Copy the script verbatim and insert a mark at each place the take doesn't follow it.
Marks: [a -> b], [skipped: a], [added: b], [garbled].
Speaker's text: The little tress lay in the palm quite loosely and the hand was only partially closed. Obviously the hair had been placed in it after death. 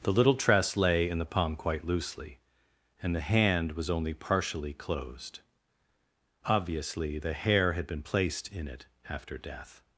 The little tress lay in the palm quite loosely and the hand was only partially closed. Obviously the hair had been placed in it after death.